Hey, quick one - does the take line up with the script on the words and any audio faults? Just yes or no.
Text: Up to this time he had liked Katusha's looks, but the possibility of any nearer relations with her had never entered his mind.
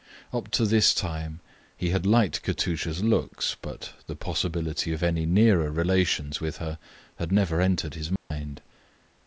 no